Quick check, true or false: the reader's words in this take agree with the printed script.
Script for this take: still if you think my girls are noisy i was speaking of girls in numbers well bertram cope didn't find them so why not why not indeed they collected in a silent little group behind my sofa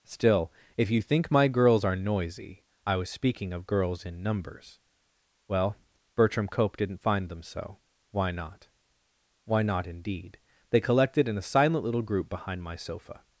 true